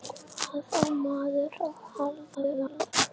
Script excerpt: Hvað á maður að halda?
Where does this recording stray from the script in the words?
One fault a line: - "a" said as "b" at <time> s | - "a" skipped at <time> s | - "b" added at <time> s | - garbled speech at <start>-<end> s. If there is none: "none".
- garbled speech at 2.3-2.9 s